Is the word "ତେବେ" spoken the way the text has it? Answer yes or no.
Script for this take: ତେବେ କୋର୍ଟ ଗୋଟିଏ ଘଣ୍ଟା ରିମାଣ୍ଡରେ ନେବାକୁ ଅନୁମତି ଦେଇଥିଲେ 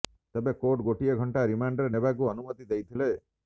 yes